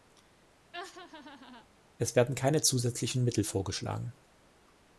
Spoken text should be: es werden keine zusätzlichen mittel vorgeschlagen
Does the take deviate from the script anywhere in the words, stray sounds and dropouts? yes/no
yes